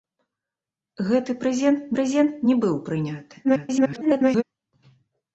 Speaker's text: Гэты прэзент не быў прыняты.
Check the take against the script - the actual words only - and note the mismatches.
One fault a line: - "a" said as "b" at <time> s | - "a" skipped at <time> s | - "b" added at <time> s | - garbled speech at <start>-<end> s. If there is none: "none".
- "прэзент" added at 2.0 s
- garbled speech at 3.4-4.4 s